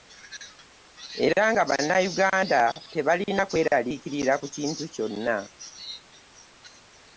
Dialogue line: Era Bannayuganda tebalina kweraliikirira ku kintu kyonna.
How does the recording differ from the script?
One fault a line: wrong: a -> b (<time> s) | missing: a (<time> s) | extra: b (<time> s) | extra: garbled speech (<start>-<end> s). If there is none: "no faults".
extra: nga (1.5 s)